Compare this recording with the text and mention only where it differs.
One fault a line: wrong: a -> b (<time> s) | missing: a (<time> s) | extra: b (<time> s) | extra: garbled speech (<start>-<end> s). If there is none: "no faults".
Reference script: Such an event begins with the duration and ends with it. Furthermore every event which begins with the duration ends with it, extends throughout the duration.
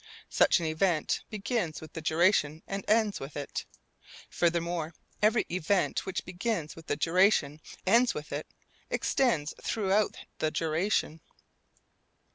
no faults